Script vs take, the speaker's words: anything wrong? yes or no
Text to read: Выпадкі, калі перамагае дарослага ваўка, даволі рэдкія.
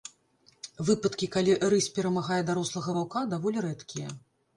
yes